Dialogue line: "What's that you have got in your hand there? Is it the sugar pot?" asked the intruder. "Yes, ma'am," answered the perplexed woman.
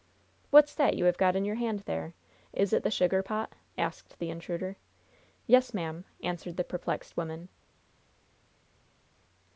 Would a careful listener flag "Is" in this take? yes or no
no